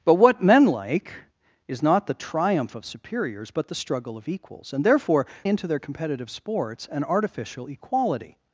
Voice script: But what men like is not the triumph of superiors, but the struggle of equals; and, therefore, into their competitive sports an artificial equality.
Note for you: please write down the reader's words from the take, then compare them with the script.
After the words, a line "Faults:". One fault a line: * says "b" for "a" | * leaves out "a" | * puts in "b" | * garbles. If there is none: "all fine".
But what men like is not the triumph of superiors, but the struggle of equals; and, therefore, into their competitive sports an artificial equality.
Faults:
all fine